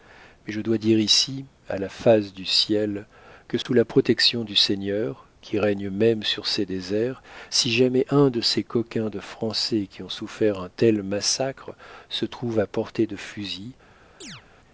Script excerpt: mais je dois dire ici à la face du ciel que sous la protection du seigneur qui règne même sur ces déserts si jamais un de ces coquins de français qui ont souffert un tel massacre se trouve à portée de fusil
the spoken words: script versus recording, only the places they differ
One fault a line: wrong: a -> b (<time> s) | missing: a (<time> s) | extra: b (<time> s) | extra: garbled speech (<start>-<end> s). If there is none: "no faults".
no faults